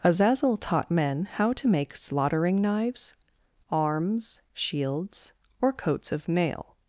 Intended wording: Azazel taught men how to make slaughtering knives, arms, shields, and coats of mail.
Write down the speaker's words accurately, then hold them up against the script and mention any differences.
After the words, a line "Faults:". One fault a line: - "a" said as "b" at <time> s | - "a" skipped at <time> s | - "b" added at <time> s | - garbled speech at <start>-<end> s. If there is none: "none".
Azazel taught men how to make slaughtering knives, arms, shields, or coats of mail.
Faults:
- "and" said as "or" at 5.6 s